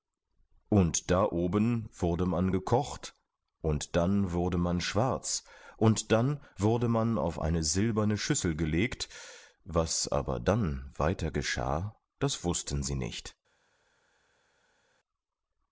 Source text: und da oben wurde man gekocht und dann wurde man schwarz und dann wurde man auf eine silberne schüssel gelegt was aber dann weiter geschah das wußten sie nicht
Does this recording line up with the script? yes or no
yes